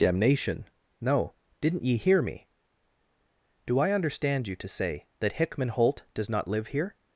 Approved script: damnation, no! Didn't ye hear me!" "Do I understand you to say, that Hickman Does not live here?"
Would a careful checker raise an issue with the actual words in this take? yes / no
yes